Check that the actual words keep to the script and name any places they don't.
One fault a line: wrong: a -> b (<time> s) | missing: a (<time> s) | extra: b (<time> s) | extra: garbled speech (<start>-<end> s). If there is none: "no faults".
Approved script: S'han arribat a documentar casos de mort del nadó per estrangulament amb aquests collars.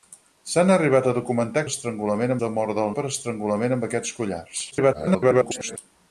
wrong: casos -> estrangulament (1.7 s)
missing: nadó (2.9 s)
extra: garbled speech (4.7-5.8 s)